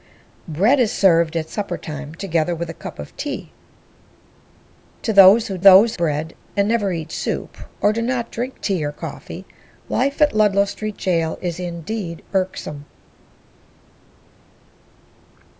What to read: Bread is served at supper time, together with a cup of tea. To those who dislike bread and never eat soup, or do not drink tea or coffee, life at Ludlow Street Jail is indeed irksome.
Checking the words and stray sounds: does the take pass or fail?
fail